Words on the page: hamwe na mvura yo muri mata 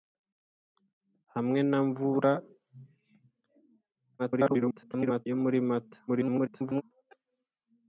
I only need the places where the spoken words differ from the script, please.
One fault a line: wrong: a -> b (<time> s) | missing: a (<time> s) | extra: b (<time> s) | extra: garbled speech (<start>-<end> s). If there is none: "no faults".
extra: garbled speech (4.2-5.3 s)
extra: garbled speech (6.1-6.8 s)